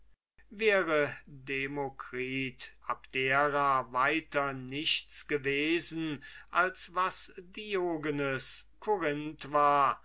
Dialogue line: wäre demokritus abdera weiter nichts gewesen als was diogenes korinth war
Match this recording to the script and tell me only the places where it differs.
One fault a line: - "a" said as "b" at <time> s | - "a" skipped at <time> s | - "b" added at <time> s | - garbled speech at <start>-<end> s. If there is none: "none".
none